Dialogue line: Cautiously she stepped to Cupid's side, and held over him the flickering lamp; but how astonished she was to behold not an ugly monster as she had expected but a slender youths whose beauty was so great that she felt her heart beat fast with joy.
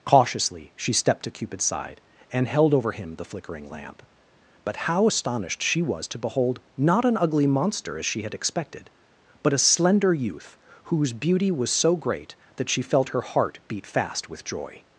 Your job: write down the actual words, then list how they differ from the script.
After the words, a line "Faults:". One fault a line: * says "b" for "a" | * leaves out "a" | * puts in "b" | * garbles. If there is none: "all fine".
Cautiously she stepped to Cupid's side, and held over him the flickering lamp; but how astonished she was to behold not an ugly monster as she had expected but a slender youth whose beauty was so great that she felt her heart beat fast with joy.
Faults:
* says "youth" for "youths"